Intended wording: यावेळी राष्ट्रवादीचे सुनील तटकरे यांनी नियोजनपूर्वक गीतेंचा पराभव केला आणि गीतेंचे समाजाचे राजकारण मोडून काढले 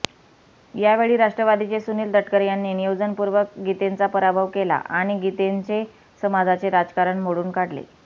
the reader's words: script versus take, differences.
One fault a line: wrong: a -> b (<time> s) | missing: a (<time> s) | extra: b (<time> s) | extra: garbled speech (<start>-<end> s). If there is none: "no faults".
no faults